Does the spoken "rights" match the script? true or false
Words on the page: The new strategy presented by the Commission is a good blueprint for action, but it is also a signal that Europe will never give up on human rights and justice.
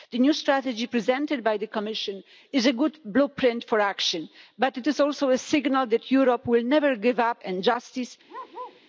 false